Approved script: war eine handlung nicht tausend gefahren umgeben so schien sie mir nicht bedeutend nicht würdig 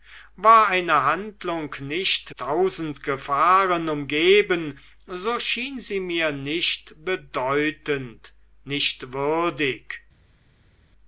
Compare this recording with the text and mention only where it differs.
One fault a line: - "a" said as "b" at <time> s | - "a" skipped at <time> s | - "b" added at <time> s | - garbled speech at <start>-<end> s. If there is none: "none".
none